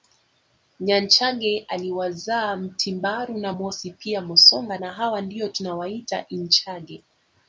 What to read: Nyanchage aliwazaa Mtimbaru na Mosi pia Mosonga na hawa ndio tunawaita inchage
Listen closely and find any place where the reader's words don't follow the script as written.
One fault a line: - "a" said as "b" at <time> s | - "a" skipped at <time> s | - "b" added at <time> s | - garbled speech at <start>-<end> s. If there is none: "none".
none